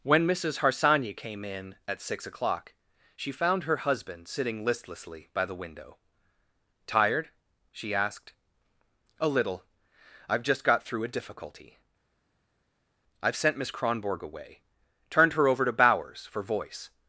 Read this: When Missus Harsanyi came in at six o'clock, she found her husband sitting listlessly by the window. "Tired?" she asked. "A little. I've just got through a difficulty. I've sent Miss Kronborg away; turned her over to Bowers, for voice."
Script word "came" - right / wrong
right